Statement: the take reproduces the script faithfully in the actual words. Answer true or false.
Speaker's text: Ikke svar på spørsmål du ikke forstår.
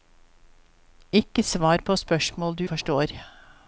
false